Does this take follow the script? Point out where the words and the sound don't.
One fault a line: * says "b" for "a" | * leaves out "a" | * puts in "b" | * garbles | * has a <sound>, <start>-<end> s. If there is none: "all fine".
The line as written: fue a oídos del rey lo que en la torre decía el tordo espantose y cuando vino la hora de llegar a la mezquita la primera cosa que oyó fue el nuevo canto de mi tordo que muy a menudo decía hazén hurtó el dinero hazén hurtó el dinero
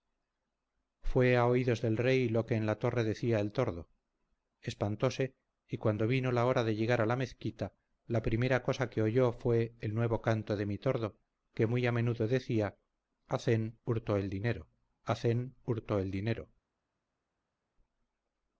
all fine